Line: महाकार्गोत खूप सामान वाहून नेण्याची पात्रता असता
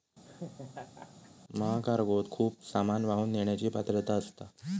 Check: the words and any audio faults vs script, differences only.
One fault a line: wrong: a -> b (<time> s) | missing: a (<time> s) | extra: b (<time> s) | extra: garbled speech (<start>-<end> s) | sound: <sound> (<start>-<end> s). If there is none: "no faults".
sound: laugh (0.2-1.3 s)